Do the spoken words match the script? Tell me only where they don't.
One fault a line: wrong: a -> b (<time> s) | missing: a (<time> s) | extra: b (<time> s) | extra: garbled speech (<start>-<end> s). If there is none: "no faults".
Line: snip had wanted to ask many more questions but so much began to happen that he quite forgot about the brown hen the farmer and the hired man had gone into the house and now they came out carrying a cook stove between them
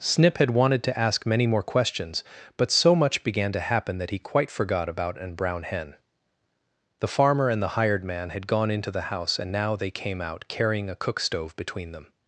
wrong: the -> an (5.2 s)